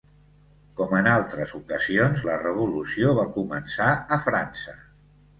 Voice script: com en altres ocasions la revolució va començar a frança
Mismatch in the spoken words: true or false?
false